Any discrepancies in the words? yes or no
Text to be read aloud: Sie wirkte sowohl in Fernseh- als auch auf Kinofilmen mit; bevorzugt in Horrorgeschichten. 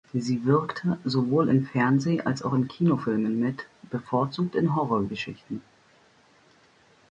yes